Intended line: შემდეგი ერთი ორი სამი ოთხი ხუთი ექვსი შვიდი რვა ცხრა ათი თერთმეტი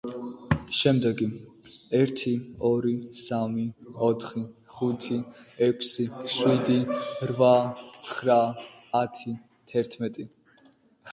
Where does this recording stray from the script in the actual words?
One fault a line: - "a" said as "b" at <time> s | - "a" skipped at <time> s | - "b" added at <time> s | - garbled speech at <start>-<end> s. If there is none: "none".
none